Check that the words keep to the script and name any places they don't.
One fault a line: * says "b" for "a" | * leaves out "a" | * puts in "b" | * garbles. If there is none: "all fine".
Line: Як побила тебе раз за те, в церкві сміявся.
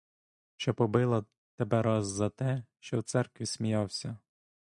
* says "Що" for "Як"
* puts in "що"